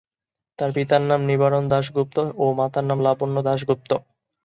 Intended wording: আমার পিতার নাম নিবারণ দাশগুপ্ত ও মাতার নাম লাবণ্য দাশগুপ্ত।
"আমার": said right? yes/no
no